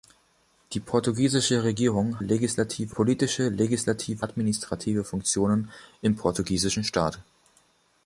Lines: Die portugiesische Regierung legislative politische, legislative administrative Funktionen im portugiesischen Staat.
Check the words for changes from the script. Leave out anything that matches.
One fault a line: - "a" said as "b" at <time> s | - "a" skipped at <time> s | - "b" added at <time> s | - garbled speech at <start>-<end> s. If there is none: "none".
none